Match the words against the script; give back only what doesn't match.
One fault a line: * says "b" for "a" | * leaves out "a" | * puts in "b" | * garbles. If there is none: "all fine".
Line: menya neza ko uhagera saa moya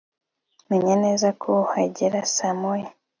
all fine